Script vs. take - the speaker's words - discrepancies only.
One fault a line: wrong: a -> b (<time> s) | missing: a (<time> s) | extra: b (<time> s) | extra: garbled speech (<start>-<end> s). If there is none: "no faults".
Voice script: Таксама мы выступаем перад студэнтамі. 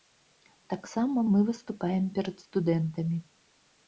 no faults